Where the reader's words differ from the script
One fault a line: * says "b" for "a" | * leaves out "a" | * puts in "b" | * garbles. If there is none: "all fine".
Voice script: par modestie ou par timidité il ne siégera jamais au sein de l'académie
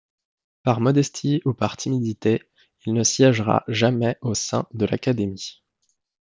all fine